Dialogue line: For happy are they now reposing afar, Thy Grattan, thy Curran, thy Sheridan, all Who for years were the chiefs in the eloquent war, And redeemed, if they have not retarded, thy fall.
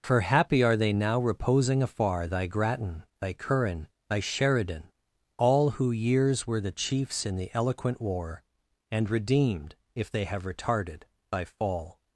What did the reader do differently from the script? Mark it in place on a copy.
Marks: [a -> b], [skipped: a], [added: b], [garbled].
For happy are they now reposing afar, Thy Grattan, thy Curran, thy Sheridan, all Who [skipped: for] years were the chiefs in the eloquent war, And redeemed, if they have [skipped: not] retarded, thy fall.